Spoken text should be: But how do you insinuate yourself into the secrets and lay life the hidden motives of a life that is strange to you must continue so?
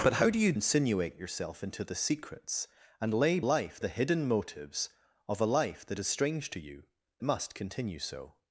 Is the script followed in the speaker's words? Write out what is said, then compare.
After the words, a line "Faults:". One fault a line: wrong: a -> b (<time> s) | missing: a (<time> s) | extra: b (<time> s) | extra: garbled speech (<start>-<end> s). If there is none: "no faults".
But how do you insinuate yourself into the secrets and lay life the hidden motives of a life that is strange to you must continue so?
Faults:
no faults